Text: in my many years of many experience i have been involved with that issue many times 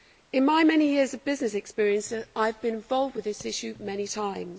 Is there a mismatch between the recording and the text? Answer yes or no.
yes